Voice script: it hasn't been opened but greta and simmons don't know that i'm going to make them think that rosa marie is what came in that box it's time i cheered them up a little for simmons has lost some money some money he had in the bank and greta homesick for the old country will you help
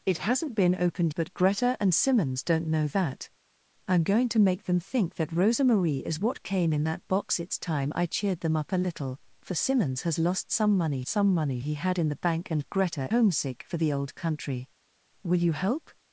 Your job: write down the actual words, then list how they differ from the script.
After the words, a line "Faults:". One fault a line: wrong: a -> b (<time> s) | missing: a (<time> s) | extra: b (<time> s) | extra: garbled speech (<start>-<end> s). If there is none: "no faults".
it hasn't been opened but greta and simmons don't know that i'm going to make them think that rosa marie is what came in that box it's time i cheered them up a little for simmons has lost some money some money he had in the bank and greta homesick for the old country will you help
Faults:
no faults